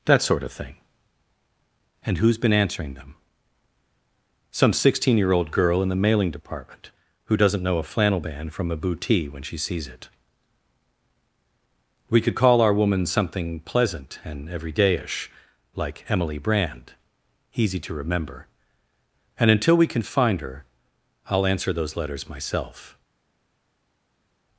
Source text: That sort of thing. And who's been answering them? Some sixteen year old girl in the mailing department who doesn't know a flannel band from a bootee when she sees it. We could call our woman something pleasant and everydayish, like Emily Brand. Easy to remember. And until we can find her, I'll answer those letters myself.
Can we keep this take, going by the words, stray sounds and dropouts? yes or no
yes